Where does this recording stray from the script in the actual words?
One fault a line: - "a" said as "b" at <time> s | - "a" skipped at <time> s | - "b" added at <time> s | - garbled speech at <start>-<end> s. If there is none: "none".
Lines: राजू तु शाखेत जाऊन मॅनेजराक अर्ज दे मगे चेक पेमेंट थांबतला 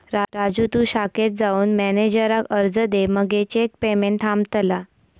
none